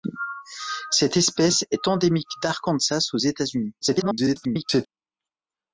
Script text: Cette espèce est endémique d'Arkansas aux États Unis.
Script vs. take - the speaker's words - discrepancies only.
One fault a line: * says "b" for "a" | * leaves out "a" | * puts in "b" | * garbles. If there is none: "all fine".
* garbles